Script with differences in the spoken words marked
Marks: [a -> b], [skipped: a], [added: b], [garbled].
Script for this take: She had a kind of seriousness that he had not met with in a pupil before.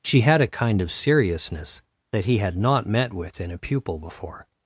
She had a kind of seriousness that he had not met with in a pupil before.